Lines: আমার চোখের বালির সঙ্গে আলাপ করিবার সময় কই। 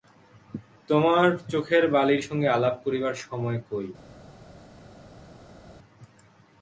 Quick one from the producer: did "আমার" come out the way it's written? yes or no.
no